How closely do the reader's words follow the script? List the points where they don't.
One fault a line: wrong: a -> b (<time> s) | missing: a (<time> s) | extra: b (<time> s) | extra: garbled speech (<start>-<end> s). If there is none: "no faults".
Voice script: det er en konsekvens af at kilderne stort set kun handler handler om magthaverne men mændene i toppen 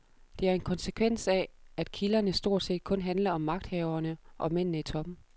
missing: handler (3.3 s)
wrong: men -> og (4.4 s)